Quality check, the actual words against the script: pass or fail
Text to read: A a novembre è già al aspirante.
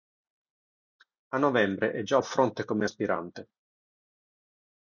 fail